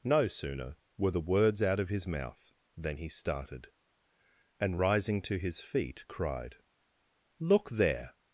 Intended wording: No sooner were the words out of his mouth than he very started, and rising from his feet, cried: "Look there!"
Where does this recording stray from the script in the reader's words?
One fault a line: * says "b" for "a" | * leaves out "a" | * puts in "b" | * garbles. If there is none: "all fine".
* leaves out "very"
* says "to" for "from"